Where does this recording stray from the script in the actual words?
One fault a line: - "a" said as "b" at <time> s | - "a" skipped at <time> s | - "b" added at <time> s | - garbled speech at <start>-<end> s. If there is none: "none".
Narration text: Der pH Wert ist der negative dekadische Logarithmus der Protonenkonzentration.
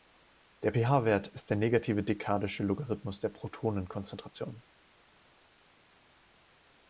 none